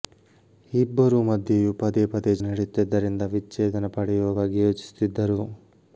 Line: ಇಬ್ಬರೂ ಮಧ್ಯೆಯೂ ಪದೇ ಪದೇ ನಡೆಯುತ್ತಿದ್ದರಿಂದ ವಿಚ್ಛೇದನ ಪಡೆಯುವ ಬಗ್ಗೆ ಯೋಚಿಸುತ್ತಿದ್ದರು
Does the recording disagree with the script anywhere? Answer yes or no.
no